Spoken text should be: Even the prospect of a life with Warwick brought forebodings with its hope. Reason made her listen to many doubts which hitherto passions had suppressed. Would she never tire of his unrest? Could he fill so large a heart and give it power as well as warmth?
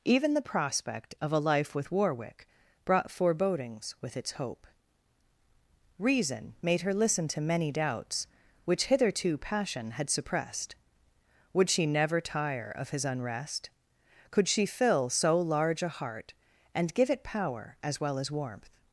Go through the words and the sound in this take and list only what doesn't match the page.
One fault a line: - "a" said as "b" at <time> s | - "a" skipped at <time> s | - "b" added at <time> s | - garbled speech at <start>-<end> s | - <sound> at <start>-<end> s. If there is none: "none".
- "passions" said as "passion" at 9.4 s
- "he" said as "she" at 14.5 s